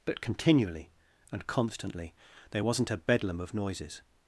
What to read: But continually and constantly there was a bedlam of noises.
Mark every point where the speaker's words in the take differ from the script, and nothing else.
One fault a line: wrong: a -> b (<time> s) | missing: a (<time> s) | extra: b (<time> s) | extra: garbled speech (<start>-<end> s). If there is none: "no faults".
wrong: was -> wasn't (2.6 s)